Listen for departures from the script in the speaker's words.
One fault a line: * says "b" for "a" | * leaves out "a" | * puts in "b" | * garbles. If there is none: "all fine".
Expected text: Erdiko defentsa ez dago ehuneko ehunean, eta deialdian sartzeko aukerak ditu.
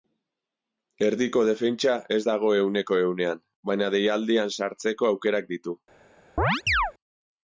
* says "baina" for "eta"